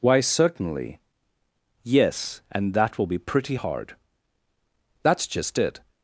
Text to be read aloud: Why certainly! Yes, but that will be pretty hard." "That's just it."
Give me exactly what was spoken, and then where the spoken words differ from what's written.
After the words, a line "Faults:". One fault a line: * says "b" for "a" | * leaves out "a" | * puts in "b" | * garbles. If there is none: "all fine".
Why certainly! Yes, and that will be pretty hard." "That's just it."
Faults:
* says "and" for "but"